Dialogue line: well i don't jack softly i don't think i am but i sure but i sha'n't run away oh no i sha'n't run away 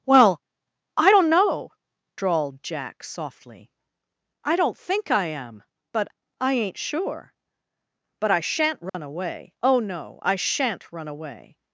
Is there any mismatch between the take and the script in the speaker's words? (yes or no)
yes